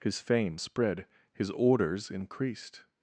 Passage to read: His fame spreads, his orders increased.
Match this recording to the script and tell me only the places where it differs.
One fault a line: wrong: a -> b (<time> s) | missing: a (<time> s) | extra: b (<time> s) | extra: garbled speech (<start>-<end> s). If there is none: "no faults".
wrong: spreads -> spread (0.5 s)